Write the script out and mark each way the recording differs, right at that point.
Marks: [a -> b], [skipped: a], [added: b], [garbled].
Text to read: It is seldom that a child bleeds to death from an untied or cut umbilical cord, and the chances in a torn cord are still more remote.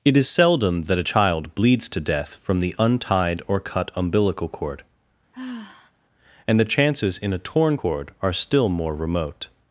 It is seldom that a child bleeds to death from [an -> the] untied or cut umbilical cord, and the chances in a torn cord are still more remote.